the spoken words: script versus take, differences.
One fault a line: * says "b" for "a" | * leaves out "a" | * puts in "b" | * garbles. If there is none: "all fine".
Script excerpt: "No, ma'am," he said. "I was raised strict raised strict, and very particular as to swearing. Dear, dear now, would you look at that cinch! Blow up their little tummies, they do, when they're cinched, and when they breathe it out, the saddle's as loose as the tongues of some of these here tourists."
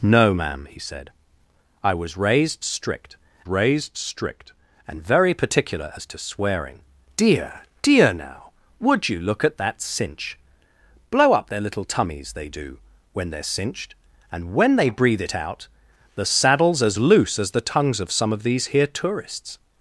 all fine